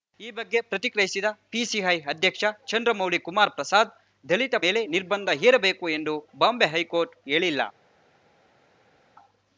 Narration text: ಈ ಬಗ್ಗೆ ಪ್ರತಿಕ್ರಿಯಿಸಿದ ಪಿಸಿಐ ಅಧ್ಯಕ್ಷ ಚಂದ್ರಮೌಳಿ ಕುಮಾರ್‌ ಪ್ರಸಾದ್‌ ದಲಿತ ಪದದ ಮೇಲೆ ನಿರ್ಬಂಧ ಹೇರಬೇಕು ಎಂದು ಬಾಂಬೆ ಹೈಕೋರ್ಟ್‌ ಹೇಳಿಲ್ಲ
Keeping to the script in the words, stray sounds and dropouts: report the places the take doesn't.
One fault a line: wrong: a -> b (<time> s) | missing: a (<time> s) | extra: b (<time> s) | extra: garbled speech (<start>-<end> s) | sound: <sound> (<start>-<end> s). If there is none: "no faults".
missing: ಪದದ (4.5 s)